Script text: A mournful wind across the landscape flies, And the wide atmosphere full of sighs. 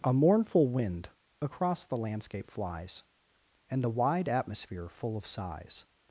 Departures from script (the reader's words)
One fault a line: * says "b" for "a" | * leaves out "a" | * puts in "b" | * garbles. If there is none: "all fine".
all fine